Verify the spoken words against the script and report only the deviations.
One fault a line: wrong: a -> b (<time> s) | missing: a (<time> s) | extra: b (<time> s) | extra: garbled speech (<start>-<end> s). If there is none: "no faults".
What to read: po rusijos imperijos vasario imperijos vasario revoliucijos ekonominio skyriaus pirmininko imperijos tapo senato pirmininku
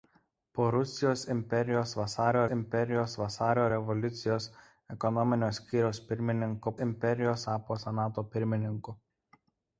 no faults